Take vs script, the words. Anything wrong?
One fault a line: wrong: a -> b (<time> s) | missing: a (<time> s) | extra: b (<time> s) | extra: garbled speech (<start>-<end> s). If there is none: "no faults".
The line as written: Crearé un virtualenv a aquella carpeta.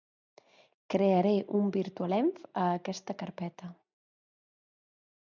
wrong: aquella -> aquesta (2.8 s)